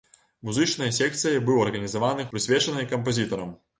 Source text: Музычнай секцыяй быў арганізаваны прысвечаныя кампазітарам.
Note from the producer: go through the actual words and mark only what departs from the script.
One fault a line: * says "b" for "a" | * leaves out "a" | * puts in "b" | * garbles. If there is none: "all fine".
all fine